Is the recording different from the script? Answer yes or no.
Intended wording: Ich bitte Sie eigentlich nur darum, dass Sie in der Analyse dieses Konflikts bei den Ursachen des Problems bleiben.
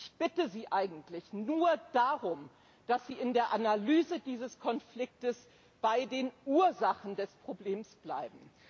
no